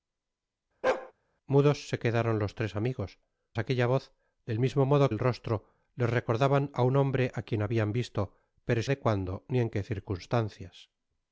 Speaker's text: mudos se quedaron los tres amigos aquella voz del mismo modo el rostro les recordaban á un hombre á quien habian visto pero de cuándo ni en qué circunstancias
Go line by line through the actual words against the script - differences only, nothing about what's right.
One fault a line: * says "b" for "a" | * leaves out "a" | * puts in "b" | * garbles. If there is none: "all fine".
all fine